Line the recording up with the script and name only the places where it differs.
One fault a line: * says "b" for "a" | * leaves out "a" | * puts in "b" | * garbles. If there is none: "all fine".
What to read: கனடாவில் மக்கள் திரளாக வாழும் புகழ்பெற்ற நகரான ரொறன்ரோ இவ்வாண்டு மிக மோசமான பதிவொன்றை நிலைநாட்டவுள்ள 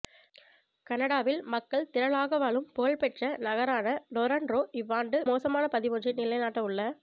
* leaves out "மிக"